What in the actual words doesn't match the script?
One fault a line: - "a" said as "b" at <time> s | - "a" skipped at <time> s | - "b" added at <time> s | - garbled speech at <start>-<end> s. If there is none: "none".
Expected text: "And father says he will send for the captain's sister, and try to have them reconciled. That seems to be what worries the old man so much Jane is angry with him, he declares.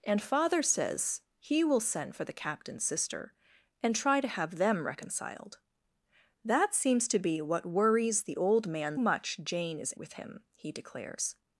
- "so" skipped at 9.0 s
- "angry" skipped at 9.9 s